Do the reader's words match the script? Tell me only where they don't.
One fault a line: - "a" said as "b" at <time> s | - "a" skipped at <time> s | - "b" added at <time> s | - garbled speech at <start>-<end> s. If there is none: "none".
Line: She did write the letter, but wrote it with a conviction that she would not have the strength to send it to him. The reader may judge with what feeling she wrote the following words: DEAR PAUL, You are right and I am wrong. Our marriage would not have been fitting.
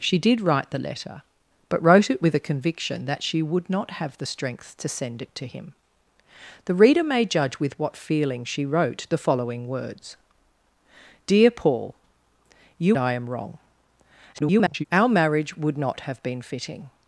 - "are right and" skipped at 13.0 s
- garbled speech at 14.3-14.8 s